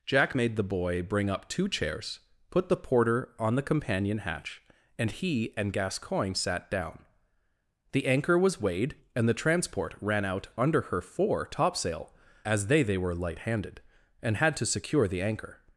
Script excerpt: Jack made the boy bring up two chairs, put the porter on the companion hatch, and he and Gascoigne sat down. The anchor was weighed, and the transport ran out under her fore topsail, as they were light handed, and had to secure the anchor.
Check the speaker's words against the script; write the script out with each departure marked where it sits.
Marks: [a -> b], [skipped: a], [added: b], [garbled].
Jack made the boy bring up two chairs, put the porter on the companion hatch, and he and Gascoigne sat down. The anchor was weighed, and the transport ran out under her fore topsail, as they [added: they] were light handed, and had to secure the anchor.